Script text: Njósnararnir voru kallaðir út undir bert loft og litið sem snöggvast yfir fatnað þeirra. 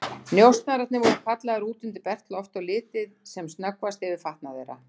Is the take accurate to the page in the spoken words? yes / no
yes